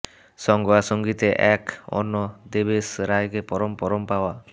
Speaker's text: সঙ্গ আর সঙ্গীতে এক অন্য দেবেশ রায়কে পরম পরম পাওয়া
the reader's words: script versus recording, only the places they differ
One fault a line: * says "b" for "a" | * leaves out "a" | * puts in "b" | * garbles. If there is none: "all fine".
all fine